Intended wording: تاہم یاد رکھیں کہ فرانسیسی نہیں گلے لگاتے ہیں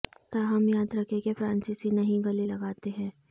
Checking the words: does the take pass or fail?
pass